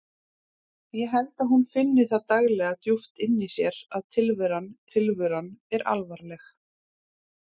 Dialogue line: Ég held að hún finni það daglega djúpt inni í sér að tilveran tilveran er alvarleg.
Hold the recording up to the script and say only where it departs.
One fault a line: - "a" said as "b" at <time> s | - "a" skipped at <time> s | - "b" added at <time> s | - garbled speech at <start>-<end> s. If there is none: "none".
none